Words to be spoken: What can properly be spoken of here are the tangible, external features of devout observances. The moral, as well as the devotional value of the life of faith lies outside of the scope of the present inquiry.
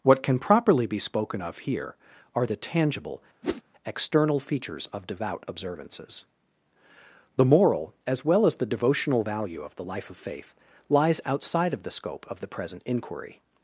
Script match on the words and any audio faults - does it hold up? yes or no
no